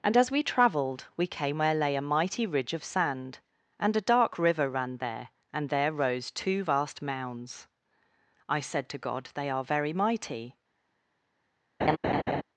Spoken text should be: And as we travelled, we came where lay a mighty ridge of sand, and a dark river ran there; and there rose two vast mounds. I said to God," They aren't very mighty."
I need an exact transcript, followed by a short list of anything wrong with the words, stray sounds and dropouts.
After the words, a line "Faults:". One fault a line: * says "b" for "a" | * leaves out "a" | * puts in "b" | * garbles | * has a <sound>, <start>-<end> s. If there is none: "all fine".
And as we travelled, we came where lay a mighty ridge of sand, and a dark river ran there; and there rose two vast mounds. I said to God," They are very mighty."
Faults:
* says "are" for "aren't"
* has a laugh, 11.8-12.4 s